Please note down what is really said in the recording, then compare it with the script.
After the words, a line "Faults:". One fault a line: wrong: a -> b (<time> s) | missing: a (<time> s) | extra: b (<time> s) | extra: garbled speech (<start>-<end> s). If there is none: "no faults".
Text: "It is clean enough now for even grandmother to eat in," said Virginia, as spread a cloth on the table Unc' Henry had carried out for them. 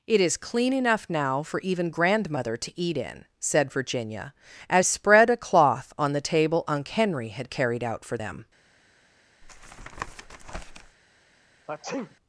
"It is clean enough now for even grandmother to eat in," said Virginia, as spread a cloth on the table Unc' Henry had carried out for them.
Faults:
no faults